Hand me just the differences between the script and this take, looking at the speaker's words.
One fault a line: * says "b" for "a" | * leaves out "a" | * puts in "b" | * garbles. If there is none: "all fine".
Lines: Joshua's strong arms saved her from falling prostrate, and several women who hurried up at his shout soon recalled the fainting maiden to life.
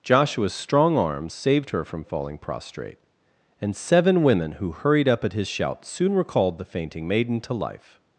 * says "seven" for "several"